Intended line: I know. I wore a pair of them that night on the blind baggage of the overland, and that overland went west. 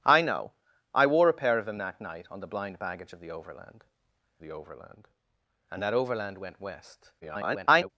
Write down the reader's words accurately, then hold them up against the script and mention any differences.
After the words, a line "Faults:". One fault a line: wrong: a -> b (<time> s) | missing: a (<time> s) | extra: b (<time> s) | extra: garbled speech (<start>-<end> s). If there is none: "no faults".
I know. I wore a pair of them that night on the blind baggage of the overland the overland, and that overland went west. [garbled]
Faults:
extra: the overland (4.4 s)
extra: garbled speech (7.2-7.9 s)